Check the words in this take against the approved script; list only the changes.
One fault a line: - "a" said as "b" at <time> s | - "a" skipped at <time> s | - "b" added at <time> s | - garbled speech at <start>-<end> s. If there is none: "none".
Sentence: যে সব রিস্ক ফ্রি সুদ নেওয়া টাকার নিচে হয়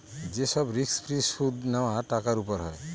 - "নিচে" said as "উপর" at 2.4 s